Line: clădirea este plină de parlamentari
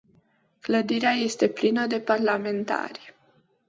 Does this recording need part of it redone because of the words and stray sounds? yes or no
no